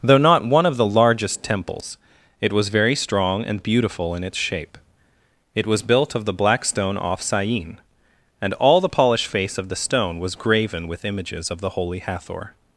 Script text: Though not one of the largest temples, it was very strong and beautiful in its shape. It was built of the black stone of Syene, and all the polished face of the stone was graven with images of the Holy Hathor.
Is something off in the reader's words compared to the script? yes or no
yes